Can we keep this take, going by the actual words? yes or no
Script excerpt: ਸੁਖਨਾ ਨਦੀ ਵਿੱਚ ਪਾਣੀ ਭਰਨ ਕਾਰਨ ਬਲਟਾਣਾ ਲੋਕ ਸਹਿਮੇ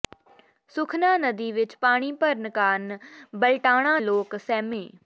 yes